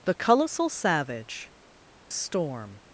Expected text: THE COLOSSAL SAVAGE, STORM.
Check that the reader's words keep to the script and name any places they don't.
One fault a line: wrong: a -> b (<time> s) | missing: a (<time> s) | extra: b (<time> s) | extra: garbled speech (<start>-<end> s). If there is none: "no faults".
no faults